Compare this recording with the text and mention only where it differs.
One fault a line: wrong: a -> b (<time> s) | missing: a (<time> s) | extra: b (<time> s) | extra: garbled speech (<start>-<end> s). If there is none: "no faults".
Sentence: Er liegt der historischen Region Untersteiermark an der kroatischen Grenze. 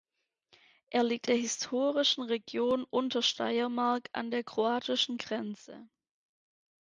no faults